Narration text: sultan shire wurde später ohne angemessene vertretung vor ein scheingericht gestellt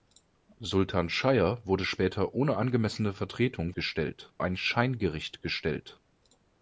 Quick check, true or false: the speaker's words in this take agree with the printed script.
false